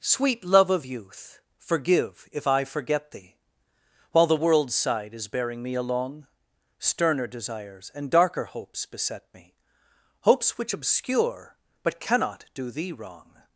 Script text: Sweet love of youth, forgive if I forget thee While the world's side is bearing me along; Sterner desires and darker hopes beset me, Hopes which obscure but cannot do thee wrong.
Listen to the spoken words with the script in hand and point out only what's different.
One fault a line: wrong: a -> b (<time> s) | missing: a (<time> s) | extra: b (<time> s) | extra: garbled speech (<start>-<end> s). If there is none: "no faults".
no faults